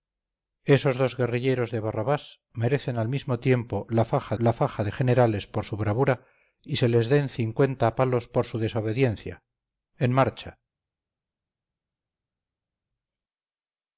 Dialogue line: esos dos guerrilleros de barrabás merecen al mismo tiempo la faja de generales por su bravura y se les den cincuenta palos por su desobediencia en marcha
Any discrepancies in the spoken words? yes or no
yes